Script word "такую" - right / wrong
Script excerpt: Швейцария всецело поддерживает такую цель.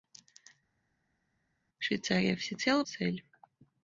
wrong